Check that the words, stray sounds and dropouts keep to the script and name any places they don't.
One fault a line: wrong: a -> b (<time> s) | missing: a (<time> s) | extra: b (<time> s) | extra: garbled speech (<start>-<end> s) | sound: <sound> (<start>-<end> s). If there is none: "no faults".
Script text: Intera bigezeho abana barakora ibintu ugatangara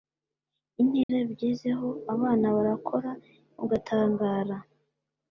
sound: dropout (1.0-1.1 s)
missing: ibintu (3.1 s)